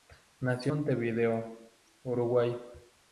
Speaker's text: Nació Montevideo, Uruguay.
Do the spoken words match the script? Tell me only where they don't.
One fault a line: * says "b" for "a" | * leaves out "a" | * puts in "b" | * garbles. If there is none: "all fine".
all fine